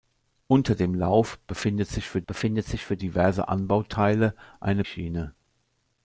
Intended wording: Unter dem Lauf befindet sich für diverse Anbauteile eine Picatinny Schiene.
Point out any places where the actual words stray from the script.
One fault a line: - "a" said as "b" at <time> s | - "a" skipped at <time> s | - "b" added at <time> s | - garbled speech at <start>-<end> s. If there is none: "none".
- "befindet sich für" added at 2.2 s
- "Picatinny" skipped at 4.8 s